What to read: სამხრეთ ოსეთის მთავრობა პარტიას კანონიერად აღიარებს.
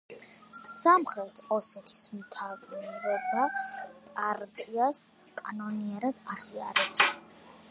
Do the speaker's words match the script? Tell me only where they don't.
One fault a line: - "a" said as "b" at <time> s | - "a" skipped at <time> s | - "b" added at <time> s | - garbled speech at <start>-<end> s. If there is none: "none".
none